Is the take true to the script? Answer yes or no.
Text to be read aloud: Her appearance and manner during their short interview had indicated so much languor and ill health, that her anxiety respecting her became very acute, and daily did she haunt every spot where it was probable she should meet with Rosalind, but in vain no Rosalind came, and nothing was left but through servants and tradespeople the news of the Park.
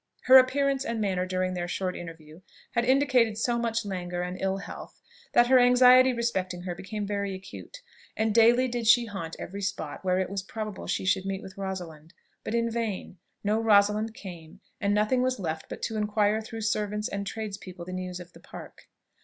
no